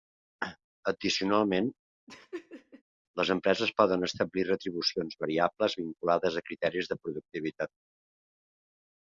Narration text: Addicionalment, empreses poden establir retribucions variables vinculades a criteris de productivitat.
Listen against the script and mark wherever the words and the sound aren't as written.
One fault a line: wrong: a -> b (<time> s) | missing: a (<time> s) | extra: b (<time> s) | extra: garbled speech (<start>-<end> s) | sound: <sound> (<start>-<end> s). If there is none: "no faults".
sound: laugh (2.1-2.8 s)
extra: les (3.2 s)